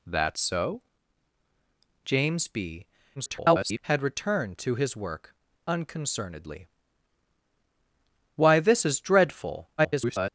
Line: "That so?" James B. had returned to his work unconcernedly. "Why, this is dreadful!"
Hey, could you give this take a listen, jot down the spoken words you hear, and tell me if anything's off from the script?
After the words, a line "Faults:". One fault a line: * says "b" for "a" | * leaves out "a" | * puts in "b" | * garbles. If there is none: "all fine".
"That so?" James B. [garbled] had returned to his work unconcernedly. "Why, this is dreadful!" [garbled]
Faults:
* garbles
* garbles